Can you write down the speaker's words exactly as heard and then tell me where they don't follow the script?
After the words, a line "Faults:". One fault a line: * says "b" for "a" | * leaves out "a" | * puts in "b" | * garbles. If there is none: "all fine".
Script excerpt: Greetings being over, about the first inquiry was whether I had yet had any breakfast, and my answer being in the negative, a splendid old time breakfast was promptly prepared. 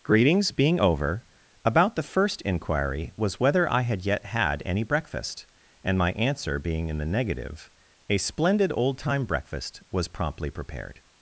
Greetings being over, about the first inquiry was whether I had yet had any breakfast, and my answer being in the negative, a splendid old time breakfast was promptly prepared.
Faults:
all fine